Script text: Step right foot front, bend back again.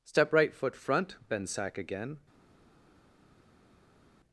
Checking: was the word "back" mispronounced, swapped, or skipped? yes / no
yes